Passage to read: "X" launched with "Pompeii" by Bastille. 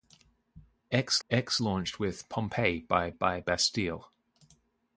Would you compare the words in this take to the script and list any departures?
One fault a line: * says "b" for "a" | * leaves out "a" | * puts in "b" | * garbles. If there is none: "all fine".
* puts in "x"
* puts in "by"